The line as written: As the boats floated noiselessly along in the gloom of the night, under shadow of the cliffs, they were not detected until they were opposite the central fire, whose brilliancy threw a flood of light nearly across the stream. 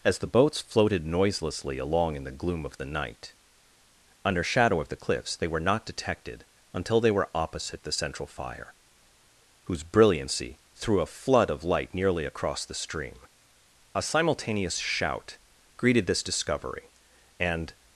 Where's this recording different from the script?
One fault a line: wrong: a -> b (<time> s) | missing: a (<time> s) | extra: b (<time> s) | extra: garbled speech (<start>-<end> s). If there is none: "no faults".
extra: A simultaneous shout greeted this discovery and (13.9 s)